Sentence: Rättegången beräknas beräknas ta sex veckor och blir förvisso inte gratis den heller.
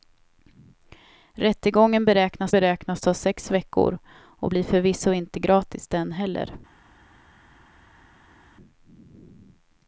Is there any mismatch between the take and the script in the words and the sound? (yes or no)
no